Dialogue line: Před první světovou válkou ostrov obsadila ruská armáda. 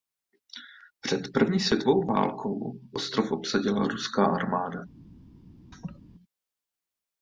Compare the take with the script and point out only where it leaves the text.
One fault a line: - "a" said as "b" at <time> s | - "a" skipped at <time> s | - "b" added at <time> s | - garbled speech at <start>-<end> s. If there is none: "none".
none